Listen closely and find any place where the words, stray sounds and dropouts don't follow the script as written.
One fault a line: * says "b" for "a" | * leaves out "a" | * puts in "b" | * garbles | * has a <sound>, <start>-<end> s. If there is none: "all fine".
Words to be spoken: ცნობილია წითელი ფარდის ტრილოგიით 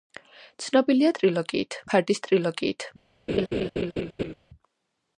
* says "ტრილოგიით" for "წითელი"
* has a laugh, 3.3-4.3 s